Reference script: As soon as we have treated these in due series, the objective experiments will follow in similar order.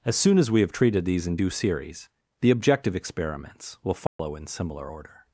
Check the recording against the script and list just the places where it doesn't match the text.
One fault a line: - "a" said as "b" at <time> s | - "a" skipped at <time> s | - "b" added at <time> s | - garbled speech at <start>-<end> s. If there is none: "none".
none